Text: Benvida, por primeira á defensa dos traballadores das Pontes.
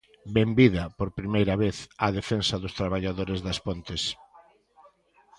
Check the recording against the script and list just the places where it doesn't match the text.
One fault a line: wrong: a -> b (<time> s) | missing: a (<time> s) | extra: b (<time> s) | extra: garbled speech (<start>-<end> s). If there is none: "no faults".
extra: vez (1.6 s)